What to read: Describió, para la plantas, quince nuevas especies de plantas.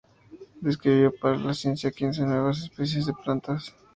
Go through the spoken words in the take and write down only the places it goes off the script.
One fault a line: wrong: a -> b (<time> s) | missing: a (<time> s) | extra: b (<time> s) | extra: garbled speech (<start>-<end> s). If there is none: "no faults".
wrong: plantas -> ciencia (1.5 s)